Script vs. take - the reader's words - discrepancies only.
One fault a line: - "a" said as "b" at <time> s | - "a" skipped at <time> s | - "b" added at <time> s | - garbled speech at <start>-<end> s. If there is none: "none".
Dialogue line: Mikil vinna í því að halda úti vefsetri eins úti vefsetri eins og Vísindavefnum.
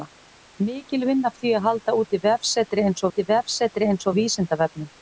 none